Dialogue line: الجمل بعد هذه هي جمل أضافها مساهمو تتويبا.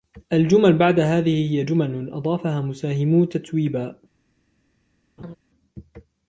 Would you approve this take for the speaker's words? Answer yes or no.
yes